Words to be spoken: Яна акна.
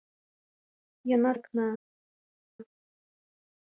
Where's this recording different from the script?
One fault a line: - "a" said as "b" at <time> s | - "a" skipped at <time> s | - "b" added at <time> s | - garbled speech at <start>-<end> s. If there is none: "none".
none